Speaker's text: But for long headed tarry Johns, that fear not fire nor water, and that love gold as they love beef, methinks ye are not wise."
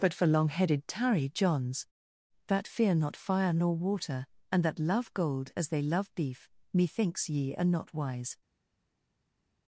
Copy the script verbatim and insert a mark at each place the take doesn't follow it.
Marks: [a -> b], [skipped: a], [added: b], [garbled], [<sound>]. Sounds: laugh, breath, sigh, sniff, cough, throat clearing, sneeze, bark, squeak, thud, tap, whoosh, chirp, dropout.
But for long headed tarry Johns, that fear not fire nor water, and that love gold as they love beef, methinks ye are not wise."